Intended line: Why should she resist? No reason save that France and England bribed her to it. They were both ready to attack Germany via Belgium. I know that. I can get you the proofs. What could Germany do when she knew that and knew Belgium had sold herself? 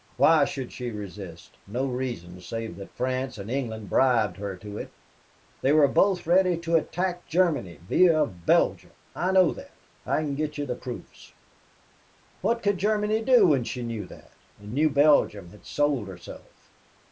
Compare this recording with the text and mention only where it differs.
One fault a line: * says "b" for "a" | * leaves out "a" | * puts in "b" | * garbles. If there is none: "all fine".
all fine